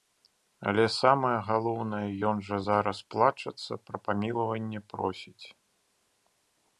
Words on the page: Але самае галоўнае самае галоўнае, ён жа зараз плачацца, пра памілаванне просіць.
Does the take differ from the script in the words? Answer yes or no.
yes